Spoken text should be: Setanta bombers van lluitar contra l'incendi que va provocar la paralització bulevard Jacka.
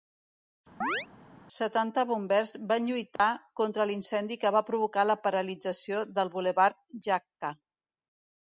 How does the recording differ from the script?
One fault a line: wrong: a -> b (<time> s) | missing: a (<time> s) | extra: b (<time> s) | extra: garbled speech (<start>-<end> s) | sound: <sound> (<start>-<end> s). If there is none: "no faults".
sound: chirp (0.8-1.1 s)
sound: dropout (3.2-3.2 s)
extra: del (6.2 s)